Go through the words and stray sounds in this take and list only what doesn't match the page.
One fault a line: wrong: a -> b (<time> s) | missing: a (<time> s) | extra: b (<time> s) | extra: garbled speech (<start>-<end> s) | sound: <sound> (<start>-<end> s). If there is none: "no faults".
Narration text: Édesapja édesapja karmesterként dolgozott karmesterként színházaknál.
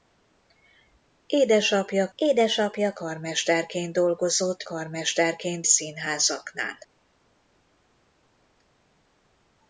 no faults